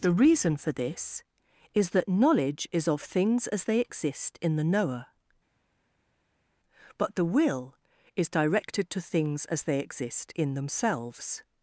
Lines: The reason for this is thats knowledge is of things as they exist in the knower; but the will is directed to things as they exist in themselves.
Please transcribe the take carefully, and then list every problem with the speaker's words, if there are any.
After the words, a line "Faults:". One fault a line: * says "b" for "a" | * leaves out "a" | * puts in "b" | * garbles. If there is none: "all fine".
The reason for this is that knowledge is of things as they exist in the knower; but the will is directed to things as they exist in themselves.
Faults:
* says "that" for "thats"